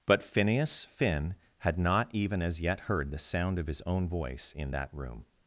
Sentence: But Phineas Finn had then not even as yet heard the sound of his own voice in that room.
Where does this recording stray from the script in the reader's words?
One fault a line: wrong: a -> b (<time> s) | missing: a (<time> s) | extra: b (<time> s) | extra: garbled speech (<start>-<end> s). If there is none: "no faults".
missing: then (1.8 s)